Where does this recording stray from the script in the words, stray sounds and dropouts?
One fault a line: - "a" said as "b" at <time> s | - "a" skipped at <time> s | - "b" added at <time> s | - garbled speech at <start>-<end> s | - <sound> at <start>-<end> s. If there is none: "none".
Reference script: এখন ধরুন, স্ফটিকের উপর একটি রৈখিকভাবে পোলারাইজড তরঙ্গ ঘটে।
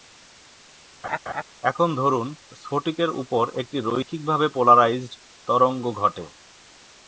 - laugh at 1.0-1.4 s